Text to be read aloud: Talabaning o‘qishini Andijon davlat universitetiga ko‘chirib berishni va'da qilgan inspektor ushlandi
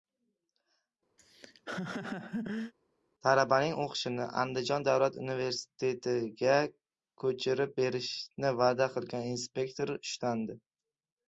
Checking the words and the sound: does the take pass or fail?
fail